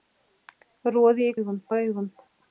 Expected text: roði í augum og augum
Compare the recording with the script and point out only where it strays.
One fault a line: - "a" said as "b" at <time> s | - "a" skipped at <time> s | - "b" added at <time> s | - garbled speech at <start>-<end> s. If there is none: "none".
none